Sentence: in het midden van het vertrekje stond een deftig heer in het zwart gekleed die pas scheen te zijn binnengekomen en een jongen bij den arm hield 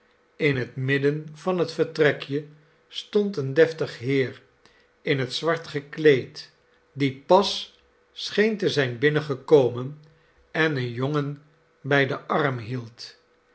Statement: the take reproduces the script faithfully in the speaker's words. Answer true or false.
true